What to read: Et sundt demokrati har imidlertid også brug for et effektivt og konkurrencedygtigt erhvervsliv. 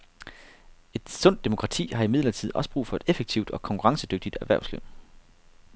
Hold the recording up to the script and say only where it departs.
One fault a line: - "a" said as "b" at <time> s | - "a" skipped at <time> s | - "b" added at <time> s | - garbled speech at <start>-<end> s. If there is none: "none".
none